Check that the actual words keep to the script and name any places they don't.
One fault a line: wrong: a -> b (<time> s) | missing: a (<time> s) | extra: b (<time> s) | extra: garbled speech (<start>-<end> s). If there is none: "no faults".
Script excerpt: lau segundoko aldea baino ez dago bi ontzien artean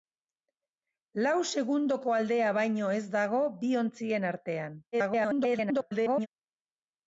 extra: garbled speech (4.9-6.3 s)